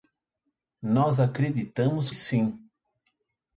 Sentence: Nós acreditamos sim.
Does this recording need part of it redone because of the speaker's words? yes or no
no